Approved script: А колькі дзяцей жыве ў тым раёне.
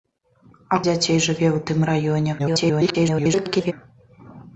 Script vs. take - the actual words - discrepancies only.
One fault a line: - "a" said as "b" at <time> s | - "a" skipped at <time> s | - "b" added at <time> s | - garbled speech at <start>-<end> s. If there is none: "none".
- "колькі" skipped at 0.8 s
- garbled speech at 2.4-3.7 s